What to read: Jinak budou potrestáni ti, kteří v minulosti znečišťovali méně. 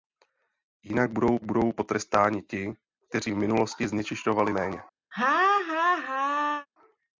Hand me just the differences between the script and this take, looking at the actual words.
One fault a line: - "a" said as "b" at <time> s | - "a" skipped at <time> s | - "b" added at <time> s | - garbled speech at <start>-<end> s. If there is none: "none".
- "budou" added at 1.4 s